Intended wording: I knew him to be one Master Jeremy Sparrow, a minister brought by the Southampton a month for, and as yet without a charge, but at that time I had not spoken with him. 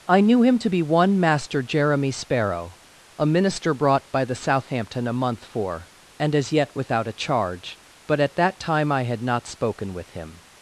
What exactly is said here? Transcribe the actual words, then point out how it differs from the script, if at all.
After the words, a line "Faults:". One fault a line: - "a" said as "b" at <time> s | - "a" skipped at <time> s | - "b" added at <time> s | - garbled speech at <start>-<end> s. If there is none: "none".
I knew him to be one Master Jeremy Sparrow, a minister brought by the Southampton a month for, and as yet without a charge, but at that time I had not spoken with him.
Faults:
none